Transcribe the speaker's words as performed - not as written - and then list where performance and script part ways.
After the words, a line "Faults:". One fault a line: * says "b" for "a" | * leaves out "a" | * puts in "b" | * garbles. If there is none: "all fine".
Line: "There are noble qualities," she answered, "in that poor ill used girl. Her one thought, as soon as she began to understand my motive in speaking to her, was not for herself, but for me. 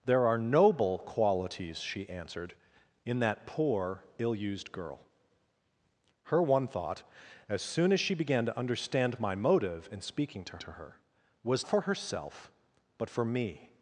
"There are noble qualities," she answered, "in that poor ill used girl. Her one thought, as soon as she began to understand my motive in speaking to to her, was for herself, but for me.
Faults:
* puts in "to"
* leaves out "not"